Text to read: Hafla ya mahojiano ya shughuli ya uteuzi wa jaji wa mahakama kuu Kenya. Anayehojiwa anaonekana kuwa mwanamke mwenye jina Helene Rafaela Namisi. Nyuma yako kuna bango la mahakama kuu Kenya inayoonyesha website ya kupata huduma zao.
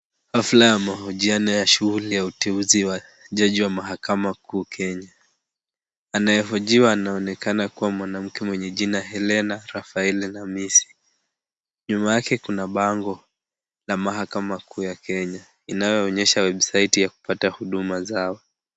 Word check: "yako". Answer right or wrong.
wrong